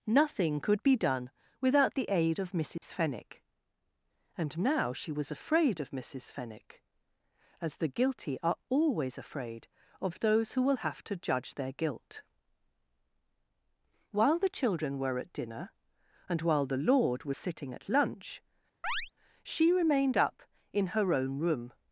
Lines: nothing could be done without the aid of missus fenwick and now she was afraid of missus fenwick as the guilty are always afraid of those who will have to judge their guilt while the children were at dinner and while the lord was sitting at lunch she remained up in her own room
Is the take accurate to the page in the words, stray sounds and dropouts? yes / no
no